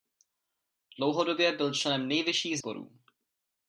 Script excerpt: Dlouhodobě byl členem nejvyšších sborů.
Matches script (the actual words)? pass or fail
pass